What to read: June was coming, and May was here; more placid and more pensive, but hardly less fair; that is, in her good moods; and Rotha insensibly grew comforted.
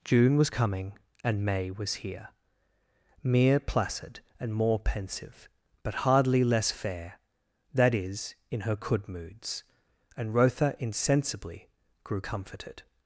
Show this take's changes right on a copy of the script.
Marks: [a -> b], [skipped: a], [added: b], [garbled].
June was coming, and May was here; [more -> mere] placid and more pensive, but hardly less fair; that is, in her [good -> could] moods; and Rotha insensibly grew comforted.